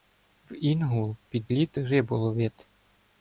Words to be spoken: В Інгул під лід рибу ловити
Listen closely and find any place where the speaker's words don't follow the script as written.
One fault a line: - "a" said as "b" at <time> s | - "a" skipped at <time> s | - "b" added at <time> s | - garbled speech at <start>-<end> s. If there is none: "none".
none